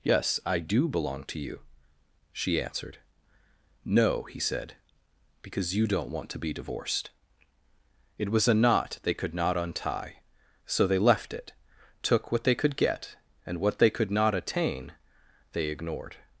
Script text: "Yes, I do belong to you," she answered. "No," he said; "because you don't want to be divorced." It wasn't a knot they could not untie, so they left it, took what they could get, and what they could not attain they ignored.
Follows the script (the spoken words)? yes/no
no